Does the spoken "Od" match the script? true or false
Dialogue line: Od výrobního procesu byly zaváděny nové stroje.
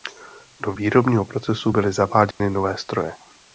false